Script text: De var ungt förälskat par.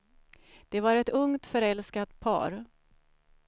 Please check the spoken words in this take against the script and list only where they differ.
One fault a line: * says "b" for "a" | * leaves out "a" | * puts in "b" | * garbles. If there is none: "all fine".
* puts in "ett"